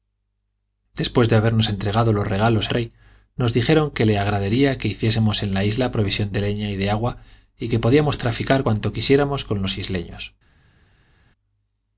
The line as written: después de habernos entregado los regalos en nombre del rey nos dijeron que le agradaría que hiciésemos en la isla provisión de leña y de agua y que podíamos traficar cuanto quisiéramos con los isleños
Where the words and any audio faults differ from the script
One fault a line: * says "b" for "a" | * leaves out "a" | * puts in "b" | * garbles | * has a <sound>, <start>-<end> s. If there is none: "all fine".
* leaves out "en nombre del"